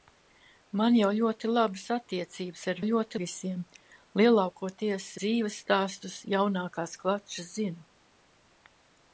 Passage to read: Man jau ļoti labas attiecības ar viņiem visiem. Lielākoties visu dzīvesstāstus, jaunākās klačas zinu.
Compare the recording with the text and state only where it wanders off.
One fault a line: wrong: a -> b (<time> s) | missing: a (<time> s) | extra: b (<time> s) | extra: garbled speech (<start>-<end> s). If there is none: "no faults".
wrong: viņiem -> ļoti (2.9 s)
missing: visu (5.1 s)